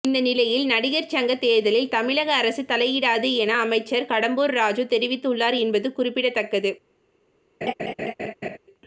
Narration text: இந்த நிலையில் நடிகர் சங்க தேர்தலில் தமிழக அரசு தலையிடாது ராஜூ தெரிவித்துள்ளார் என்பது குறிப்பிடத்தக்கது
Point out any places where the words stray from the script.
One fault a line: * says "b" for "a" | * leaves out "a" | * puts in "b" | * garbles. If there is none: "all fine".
* puts in "என அமைச்சர் கடம்பூர்"